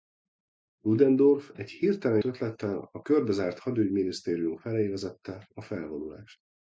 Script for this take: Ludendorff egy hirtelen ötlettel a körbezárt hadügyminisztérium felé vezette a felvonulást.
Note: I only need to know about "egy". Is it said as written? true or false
true